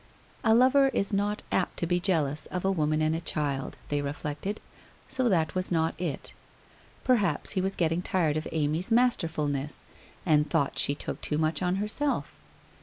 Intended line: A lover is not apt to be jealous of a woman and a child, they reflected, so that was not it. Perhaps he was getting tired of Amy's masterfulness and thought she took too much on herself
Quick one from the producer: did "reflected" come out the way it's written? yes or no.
yes